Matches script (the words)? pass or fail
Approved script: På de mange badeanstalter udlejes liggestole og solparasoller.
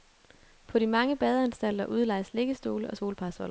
pass